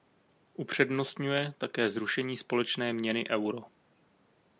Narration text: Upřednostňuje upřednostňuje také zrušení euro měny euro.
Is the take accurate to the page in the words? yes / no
no